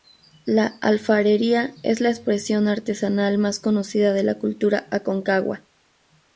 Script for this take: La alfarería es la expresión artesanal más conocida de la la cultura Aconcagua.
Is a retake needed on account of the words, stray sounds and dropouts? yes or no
yes